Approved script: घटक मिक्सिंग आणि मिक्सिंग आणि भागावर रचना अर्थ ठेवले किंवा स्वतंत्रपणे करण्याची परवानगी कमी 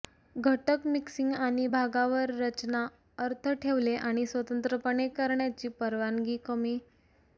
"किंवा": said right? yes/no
no